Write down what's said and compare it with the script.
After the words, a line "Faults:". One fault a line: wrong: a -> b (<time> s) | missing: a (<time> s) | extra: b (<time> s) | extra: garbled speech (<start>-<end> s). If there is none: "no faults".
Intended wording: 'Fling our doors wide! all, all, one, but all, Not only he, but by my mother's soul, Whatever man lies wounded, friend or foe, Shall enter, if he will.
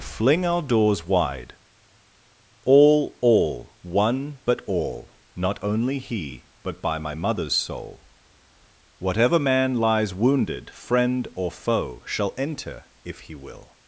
'Fling our doors wide! all, all, one, but all, Not only he, but by my mother's soul, Whatever man lies wounded, friend or foe, Shall enter, if he will.
Faults:
no faults